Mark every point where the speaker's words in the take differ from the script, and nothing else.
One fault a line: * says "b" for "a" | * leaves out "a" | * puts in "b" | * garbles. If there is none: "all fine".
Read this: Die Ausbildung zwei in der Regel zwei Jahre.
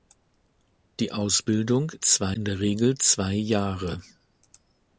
all fine